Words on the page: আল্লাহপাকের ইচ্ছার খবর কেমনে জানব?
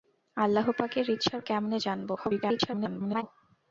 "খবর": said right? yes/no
no